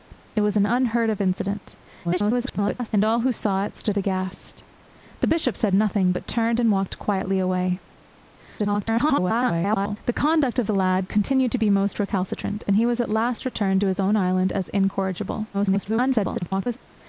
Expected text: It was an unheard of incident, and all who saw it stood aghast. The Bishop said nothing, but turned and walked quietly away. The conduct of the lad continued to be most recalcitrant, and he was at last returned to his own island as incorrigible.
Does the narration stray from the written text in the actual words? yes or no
yes